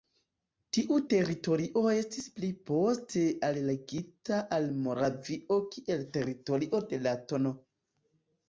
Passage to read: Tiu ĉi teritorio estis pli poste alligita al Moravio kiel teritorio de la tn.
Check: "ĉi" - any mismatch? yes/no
yes